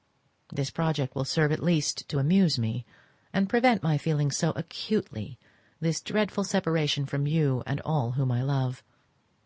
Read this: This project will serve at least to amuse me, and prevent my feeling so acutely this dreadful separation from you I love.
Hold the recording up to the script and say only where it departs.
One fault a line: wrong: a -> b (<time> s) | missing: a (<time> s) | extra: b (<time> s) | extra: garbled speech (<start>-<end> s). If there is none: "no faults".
extra: and all whom (7.7 s)